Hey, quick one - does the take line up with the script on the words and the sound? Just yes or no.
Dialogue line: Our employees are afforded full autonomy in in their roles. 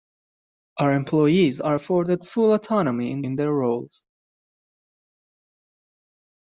yes